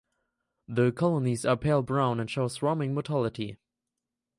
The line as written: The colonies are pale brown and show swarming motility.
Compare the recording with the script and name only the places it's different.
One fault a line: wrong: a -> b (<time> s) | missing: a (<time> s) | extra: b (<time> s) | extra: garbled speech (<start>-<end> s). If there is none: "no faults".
no faults